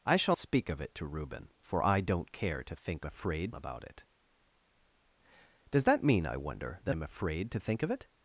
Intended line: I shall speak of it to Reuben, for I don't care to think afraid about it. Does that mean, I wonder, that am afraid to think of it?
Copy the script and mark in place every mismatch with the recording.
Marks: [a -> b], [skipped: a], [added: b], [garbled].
I shall speak of it to Reuben, for I don't care to think afraid about it. Does that mean, I wonder, that am afraid to think of it?